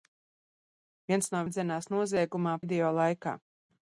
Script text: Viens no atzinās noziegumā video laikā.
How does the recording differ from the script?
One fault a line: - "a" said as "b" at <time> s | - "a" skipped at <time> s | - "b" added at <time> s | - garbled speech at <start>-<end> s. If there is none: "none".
none